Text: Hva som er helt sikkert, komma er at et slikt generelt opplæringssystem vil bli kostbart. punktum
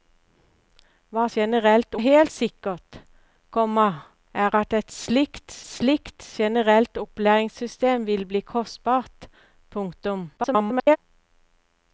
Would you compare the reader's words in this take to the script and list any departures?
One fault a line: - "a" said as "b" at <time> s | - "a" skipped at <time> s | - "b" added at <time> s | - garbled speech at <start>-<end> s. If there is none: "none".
- "som" said as "generelt" at 1.4 s
- "slikt" added at 5.6 s
- garbled speech at 10.4-11.0 s